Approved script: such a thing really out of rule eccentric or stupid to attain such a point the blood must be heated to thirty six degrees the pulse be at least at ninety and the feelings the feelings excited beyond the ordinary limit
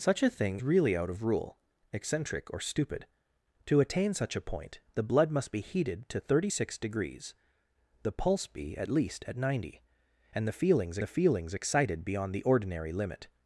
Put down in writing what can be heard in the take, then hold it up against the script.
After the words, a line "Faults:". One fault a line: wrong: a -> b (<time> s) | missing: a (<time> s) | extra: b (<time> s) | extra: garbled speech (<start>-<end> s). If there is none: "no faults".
such a thing really out of rule eccentric or stupid to attain such a point the blood must be heated to thirty six degrees the pulse be at least at ninety and the feelings the feelings excited beyond the ordinary limit
Faults:
no faults